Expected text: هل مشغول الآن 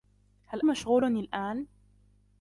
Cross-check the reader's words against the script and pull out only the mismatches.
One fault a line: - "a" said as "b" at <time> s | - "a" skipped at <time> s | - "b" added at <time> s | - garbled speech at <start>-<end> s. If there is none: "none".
none